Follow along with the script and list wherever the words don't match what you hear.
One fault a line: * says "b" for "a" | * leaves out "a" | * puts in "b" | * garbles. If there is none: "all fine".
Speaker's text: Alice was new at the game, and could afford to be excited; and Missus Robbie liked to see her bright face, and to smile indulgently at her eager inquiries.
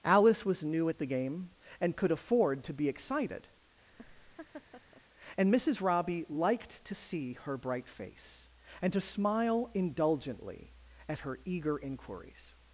all fine